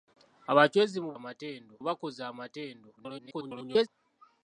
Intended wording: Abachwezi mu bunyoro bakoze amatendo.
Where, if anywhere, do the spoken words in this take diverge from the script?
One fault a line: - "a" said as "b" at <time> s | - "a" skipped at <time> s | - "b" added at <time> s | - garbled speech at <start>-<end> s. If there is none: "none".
- "bunyoro" said as "amatendo" at 1.2 s
- garbled speech at 3.0-3.9 s